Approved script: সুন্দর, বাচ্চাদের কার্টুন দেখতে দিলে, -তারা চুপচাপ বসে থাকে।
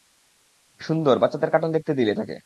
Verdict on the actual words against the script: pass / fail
fail